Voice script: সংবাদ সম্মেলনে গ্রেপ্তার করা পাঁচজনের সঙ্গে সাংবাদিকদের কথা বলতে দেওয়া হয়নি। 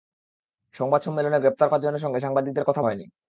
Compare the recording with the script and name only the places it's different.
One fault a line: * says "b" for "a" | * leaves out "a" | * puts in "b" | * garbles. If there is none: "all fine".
* leaves out "করা"
* leaves out "বলতে দেওয়া"